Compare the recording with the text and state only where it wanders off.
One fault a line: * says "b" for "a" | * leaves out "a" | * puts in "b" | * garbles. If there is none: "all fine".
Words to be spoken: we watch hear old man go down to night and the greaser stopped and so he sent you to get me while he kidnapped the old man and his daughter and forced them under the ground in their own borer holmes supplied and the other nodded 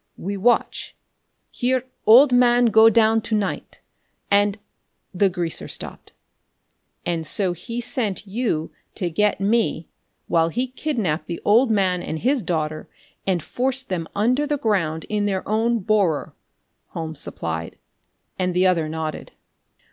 all fine